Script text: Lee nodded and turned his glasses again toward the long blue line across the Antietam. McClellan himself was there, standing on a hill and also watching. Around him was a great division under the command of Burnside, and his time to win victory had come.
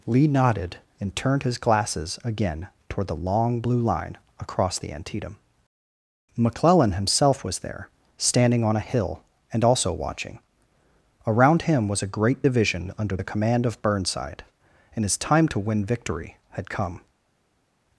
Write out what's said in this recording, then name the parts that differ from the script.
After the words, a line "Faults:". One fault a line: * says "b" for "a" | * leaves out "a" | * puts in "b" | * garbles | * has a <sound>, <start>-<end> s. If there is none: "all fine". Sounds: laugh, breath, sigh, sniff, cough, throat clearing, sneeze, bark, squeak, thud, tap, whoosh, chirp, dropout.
Lee nodded and turned his glasses again toward the long blue line across the Antietam. McClellan himself was there, standing on a hill and also watching. Around him was a great division under the command of Burnside, and his time to win victory had come.
Faults:
all fine